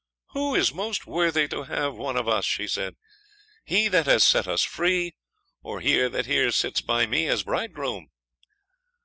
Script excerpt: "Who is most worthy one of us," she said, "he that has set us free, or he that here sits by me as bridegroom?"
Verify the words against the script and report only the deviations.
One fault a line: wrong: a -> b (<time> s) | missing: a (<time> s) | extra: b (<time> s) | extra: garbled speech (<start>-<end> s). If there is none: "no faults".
extra: to have (1.5 s)